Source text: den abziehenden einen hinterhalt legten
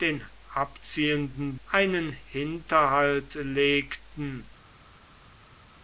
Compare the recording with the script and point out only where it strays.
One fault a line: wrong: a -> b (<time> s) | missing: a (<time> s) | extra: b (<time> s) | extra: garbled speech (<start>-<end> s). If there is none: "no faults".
no faults